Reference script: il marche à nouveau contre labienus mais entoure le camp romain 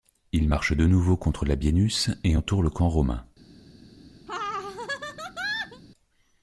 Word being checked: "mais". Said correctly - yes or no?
no